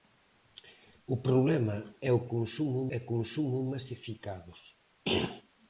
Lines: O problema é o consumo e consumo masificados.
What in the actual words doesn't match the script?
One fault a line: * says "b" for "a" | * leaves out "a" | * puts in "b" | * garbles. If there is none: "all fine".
all fine